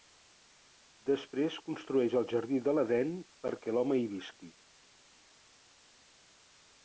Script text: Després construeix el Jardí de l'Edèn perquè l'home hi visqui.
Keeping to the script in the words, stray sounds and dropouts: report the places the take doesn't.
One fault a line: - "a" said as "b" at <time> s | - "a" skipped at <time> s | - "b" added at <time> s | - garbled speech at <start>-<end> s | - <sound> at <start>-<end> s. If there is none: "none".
none